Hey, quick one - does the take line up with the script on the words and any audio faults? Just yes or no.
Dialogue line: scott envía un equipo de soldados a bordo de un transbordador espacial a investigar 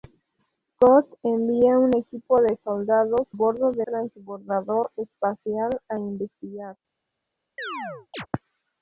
no